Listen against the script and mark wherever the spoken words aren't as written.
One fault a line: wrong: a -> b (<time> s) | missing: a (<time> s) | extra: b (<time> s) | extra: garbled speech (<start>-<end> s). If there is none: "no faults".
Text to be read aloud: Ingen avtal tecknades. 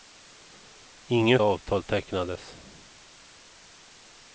no faults